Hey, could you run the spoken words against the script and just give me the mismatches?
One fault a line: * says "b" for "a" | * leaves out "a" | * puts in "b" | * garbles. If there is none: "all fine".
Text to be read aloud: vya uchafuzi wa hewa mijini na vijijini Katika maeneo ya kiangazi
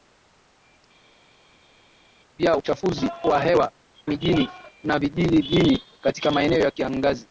all fine